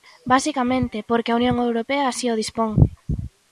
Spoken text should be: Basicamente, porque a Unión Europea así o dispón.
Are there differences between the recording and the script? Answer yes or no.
no